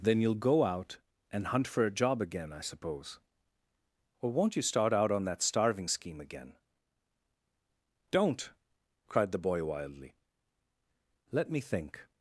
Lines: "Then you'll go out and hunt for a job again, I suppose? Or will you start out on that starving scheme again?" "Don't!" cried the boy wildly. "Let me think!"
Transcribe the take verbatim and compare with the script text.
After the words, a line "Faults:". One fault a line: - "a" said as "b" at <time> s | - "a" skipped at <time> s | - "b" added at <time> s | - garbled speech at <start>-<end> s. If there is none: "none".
"Then you'll go out and hunt for a job again, I suppose? Or won't you start out on that starving scheme again?" "Don't!" cried the boy wildly. "Let me think!"
Faults:
- "will" said as "won't" at 4.3 s